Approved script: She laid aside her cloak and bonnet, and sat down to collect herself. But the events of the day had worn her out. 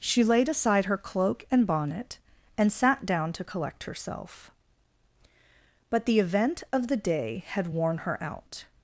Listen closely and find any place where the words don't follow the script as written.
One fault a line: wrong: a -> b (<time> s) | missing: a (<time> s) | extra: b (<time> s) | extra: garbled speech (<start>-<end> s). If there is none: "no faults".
wrong: events -> event (6.2 s)